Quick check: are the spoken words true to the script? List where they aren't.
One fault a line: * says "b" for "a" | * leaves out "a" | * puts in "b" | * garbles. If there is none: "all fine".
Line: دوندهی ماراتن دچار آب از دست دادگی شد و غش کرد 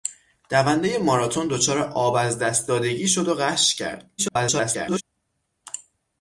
* garbles